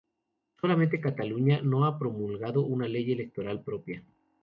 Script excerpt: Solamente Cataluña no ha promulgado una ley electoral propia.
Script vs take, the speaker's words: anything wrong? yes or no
no